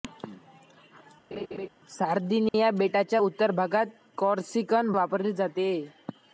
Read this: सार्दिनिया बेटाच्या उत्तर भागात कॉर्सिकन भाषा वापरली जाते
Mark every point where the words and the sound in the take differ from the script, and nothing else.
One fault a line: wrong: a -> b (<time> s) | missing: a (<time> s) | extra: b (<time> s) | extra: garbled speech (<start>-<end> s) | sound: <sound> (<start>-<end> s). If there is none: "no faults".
sound: laugh (1.3-1.7 s)
sound: dropout (2.5-2.5 s)
missing: भाषा (4.9 s)